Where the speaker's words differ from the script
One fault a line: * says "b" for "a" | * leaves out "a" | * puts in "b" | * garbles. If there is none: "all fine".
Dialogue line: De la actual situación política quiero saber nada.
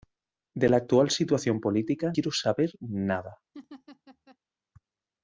all fine